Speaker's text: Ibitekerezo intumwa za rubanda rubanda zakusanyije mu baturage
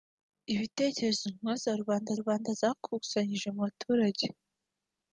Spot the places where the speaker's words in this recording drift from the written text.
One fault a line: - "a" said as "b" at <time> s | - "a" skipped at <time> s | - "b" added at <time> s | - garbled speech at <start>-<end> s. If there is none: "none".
none